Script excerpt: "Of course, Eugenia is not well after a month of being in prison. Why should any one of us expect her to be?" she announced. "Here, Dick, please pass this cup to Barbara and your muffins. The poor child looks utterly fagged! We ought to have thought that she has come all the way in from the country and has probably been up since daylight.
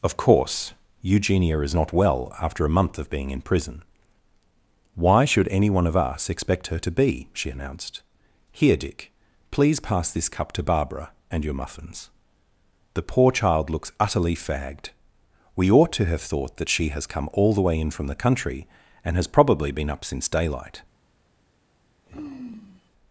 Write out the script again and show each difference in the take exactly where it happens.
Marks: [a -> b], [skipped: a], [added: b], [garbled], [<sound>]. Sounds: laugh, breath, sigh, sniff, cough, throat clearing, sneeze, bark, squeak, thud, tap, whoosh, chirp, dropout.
"Of course, Eugenia is not well after a month of being in prison. Why should any one of us expect her to be?" she announced. "Here, Dick, please pass this cup to Barbara and your muffins. The poor child looks utterly fagged! We ought to have thought that she has come all the way in from the country and has probably been up since daylight. [sigh]